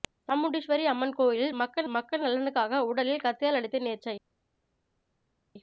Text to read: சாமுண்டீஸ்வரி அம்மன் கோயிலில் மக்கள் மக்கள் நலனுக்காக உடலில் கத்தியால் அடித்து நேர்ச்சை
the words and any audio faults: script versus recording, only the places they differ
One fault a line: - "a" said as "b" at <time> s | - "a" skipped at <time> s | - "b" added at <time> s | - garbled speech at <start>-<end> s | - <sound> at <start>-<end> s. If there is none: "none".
none